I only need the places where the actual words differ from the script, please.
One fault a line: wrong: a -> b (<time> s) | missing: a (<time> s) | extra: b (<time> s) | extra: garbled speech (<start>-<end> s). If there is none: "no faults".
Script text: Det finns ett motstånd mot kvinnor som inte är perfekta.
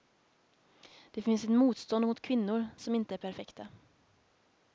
no faults